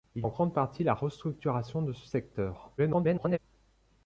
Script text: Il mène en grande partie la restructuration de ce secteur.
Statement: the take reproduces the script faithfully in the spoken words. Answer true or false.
false